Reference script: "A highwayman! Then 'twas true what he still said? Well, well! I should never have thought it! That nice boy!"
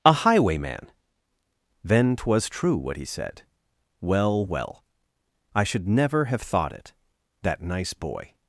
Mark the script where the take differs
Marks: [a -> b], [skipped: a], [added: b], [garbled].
"A highwayman! Then 'twas true what he [skipped: still] said? Well, well! I should never have thought it! That nice boy!"